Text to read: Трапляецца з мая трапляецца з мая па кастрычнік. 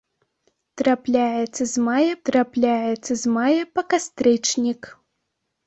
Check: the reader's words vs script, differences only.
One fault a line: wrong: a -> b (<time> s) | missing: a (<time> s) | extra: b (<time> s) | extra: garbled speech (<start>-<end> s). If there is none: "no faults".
no faults